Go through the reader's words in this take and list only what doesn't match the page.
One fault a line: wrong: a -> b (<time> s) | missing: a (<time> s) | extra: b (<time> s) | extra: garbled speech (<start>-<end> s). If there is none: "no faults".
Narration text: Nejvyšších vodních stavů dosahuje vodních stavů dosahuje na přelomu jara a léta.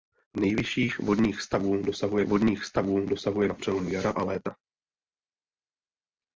no faults